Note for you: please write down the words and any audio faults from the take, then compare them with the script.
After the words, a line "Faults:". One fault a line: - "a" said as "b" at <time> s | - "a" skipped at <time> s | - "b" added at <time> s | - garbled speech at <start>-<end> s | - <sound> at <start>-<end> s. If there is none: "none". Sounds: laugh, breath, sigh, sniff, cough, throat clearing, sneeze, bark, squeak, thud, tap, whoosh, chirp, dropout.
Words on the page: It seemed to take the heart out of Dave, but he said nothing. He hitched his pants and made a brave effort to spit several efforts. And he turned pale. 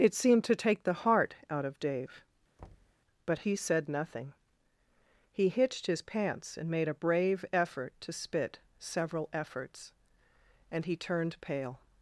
It seemed to take the heart out of Dave, but he said nothing. He hitched his pants and made a brave effort to spit several efforts. And he turned pale.
Faults:
- thud at 2.6-3.0 s